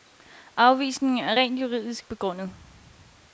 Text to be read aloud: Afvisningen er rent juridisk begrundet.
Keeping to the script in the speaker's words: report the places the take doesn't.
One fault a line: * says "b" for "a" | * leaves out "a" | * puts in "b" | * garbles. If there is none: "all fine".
all fine